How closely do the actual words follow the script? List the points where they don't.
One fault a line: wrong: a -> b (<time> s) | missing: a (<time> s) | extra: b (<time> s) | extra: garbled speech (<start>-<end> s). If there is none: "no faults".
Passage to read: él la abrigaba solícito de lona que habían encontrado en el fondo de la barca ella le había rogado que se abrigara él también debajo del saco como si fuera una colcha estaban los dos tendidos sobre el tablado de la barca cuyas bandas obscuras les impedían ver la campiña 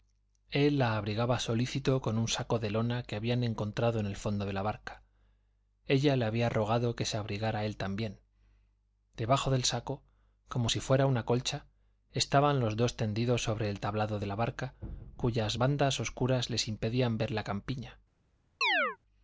extra: con un saco (2.0 s)